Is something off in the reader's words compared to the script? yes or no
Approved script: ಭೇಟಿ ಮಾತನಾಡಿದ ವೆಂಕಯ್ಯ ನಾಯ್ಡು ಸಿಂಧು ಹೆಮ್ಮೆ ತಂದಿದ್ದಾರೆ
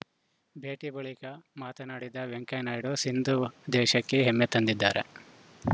yes